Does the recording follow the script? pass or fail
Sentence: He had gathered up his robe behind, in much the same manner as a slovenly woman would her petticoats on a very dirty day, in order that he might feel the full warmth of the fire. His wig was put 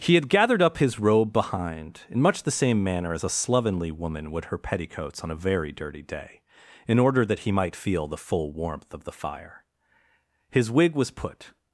pass